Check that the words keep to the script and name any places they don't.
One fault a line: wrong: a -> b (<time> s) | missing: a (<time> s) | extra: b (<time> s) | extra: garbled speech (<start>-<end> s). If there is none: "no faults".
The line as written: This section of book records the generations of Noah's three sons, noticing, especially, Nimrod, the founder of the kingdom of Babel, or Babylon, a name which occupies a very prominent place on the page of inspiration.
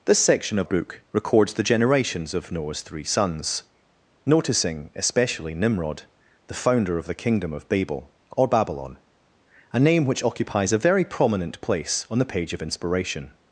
no faults